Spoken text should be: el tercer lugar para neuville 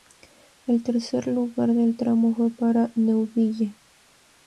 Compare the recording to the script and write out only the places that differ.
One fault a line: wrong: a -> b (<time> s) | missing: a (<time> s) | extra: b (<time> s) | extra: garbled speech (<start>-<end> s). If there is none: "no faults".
extra: del tramo fue (1.7 s)